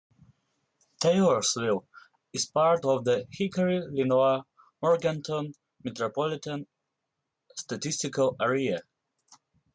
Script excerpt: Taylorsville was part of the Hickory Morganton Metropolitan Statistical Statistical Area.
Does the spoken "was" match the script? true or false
false